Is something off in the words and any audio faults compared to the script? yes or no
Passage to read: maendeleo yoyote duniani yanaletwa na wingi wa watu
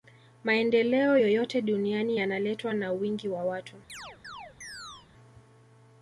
yes